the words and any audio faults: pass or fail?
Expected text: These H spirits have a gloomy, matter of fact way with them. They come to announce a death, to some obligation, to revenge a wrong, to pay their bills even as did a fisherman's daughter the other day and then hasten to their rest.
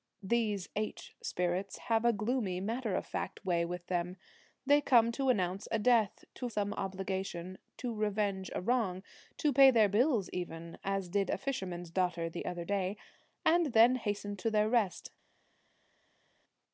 pass